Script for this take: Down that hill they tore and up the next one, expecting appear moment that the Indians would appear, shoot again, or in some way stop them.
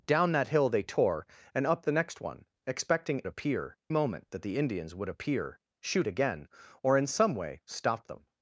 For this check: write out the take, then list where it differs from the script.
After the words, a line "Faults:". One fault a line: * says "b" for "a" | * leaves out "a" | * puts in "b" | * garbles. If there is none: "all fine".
Down that hill they tore and up the next one, expecting appear moment that the Indians would appear, shoot again, or in some way stop them.
Faults:
all fine